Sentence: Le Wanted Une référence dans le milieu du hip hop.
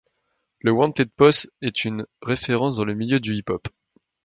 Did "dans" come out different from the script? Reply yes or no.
no